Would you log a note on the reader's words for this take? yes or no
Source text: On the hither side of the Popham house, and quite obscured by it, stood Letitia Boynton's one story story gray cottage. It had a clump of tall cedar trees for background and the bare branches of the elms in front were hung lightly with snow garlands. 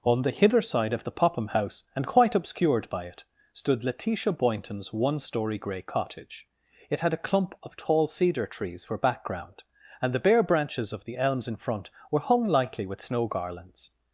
yes